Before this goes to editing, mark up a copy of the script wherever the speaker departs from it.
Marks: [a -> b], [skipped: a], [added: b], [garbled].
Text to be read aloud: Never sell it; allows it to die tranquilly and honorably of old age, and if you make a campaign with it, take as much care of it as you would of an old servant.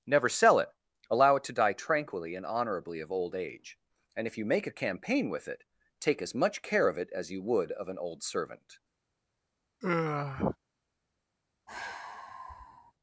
Never sell it; [allows -> allow] it to die tranquilly and honorably of old age, and if you make a campaign with it, take as much care of it as you would of an old servant.